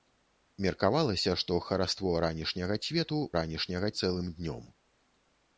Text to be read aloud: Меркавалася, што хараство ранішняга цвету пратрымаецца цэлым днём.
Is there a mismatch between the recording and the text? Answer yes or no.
yes